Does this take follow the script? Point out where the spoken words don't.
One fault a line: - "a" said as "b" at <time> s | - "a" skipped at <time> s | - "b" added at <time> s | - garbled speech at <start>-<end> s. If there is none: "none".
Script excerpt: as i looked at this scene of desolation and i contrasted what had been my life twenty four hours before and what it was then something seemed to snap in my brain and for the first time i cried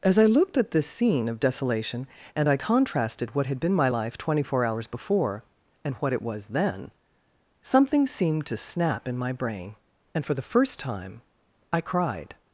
none